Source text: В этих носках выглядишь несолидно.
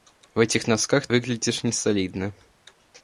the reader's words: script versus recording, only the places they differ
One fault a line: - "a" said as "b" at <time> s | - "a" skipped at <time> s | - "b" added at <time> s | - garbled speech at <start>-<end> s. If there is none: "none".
none